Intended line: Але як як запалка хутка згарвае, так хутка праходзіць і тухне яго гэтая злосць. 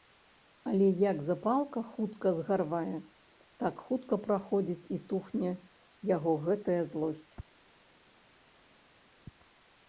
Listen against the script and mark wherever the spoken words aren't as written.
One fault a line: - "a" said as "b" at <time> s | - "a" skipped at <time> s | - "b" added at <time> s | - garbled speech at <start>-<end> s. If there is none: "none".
- "як" skipped at 1.2 s